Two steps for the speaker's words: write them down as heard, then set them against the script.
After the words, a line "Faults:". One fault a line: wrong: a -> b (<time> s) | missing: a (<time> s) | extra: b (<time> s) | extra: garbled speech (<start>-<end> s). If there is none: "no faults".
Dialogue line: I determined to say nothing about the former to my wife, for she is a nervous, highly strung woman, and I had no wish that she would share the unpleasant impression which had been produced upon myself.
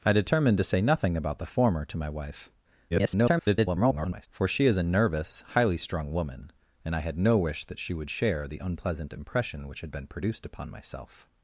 I determined to say nothing about the former to my wife, [garbled] for she is a nervous, highly strung woman, and I had no wish that she would share the unpleasant impression which had been produced upon myself.
Faults:
extra: garbled speech (2.9-4.3 s)